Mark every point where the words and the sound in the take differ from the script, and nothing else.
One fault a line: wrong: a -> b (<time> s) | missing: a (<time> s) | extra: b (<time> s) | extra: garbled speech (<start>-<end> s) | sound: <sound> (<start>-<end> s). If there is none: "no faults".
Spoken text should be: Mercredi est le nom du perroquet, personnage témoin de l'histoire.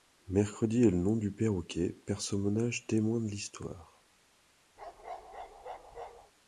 sound: bark (4.8-6.3 s)